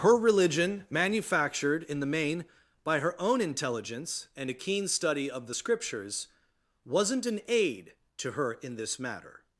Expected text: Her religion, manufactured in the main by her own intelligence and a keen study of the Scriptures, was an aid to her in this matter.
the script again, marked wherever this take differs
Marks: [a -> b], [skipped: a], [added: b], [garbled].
Her religion, manufactured in the main by her own intelligence and a keen study of the Scriptures, [was -> wasn't] an aid to her in this matter.